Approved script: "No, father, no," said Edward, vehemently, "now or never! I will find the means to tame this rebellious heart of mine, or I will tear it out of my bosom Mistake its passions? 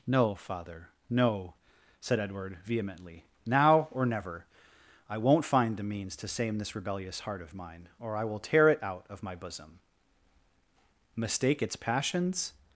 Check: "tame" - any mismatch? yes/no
yes